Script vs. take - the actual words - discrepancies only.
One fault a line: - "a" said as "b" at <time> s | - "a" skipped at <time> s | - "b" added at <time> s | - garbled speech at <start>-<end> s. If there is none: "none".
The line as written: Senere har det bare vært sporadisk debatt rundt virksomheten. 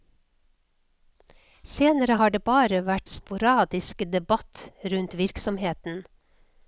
none